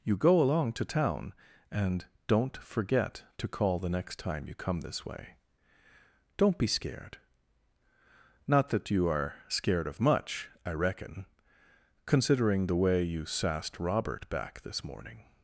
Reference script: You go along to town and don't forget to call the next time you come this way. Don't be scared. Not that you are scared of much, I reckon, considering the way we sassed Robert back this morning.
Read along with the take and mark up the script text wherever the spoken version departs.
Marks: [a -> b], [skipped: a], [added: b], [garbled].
You go along to town and don't forget to call the next time you come this way. Don't be scared. Not that you are scared of much, I reckon, considering the way [we -> you] sassed Robert back this morning.